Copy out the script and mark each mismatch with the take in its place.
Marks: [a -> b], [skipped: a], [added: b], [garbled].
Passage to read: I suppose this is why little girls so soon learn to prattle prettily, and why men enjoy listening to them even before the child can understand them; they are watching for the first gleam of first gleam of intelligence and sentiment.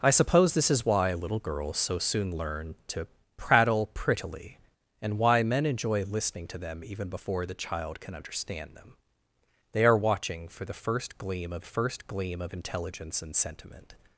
I suppose this is why little girls so soon learn to prattle prettily, and why men enjoy listening to them even before the child can understand them; they are watching for the first gleam of first gleam of intelligence and sentiment.